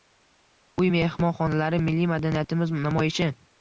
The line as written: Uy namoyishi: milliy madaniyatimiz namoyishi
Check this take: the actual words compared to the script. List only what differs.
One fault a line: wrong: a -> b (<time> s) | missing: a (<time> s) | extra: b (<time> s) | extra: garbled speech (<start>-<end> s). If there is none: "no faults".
wrong: namoyishi -> mehmonxonalari (0.9 s)